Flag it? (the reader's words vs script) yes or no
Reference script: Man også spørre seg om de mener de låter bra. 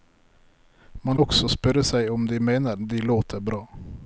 no